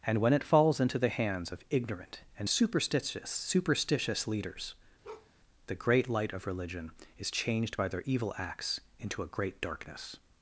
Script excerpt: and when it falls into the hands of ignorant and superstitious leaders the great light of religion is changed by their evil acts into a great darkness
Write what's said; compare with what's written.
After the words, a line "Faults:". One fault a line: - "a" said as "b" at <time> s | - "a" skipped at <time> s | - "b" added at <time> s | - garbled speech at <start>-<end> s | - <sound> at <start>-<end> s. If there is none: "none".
and when it falls into the hands of ignorant and superstitious superstitious leaders the great light of religion is changed by their evil acts into a great darkness
Faults:
- "superstitious" added at 3.3 s
- bark at 5.0-5.3 s